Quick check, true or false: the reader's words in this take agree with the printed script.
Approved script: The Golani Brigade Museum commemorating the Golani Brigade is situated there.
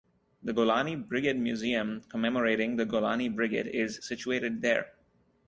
true